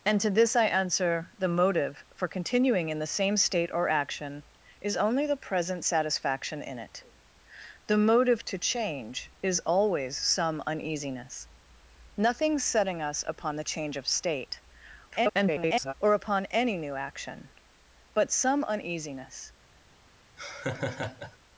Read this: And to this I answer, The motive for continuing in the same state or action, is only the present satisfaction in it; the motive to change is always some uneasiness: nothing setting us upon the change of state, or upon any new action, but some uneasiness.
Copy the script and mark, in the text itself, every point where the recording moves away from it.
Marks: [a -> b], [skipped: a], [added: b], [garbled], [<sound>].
And to this I answer, The motive for continuing in the same state or action, is only the present satisfaction in it; the motive to change is always some uneasiness: nothing setting us upon the change of state, [garbled] or upon any new action, but some uneasiness. [laugh]